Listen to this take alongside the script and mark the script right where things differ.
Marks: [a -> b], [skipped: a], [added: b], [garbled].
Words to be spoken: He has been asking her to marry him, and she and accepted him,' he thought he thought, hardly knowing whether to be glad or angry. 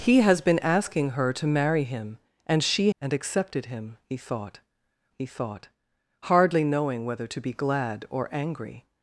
He has been asking her to marry him, and she and accepted him,' he thought he thought, hardly knowing whether to be glad or angry.